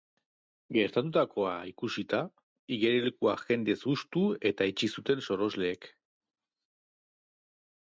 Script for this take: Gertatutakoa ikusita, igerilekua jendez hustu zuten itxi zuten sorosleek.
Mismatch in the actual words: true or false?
true